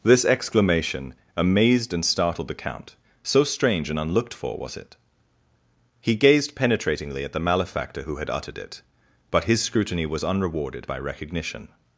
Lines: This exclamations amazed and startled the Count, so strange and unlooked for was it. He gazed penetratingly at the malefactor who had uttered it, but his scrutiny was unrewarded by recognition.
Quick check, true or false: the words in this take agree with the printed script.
false